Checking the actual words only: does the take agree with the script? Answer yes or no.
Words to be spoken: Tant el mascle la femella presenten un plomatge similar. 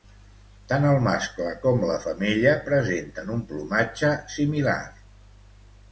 no